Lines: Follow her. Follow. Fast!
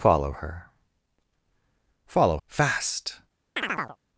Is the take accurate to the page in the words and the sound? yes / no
no